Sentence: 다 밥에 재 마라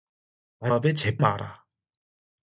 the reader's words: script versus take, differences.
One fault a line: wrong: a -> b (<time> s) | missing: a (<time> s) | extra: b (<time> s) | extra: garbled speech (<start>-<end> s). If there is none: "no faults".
no faults